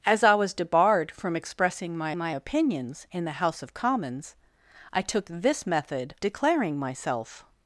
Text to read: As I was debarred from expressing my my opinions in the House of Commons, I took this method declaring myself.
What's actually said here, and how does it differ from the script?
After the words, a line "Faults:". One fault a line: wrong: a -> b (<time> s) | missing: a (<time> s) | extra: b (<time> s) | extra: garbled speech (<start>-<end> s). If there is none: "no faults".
As I was debarred from expressing my my opinions in the House of Commons, I took this method declaring myself.
Faults:
no faults